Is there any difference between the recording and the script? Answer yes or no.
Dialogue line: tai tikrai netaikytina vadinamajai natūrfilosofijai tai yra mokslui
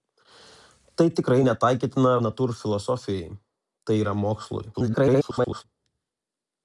yes